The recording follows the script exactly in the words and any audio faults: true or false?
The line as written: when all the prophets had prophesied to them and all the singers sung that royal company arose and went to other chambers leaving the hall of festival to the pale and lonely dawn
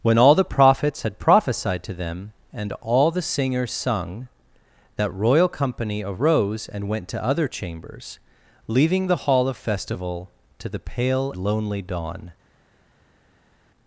false